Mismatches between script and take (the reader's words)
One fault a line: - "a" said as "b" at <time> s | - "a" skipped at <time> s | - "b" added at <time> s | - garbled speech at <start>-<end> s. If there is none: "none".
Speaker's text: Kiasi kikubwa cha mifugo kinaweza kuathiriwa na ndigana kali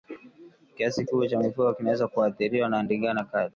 none